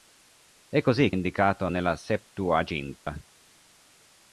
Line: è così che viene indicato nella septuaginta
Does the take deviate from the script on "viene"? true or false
true